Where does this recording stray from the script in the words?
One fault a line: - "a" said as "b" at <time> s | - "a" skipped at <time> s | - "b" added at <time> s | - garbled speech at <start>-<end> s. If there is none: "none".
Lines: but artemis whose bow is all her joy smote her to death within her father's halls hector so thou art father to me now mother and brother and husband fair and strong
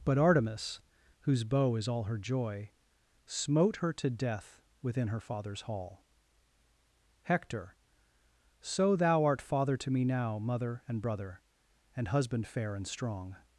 - "halls" said as "hall" at 5.6 s